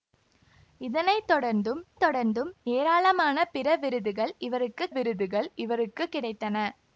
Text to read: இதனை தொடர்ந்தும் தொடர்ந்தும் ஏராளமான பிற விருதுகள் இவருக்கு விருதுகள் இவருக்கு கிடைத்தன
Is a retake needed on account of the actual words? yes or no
no